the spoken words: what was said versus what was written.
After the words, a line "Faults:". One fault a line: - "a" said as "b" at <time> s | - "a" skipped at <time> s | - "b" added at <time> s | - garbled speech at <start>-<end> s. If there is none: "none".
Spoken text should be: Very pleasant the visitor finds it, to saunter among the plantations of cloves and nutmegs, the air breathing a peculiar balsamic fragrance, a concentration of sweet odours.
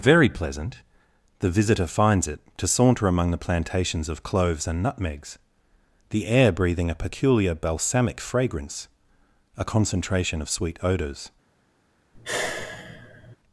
Very pleasant the visitor finds it, to saunter among the plantations of cloves and nutmegs, the air breathing a peculiar balsamic fragrance, a concentration of sweet odours.
Faults:
none